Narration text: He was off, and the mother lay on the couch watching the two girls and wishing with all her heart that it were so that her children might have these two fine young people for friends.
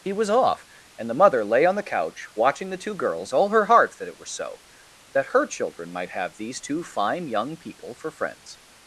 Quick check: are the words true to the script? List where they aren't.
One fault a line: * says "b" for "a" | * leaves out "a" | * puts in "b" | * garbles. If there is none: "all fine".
* leaves out "and wishing with"